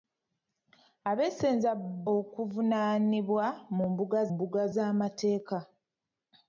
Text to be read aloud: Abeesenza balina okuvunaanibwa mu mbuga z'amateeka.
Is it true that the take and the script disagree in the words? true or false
true